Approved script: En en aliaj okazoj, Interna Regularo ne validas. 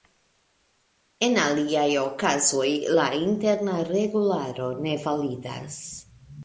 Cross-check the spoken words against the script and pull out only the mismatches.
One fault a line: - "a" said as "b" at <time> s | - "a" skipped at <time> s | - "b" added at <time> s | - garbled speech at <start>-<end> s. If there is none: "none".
- "en" skipped at 1.4 s
- "la" added at 3.0 s